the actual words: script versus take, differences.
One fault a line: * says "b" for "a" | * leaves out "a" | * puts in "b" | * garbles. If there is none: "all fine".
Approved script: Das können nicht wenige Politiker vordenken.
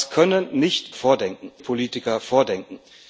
* says "vordenken" for "wenige"